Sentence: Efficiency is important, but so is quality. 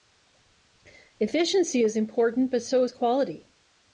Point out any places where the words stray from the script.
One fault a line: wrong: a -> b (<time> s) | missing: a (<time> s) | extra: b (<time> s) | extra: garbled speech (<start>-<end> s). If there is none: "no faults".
no faults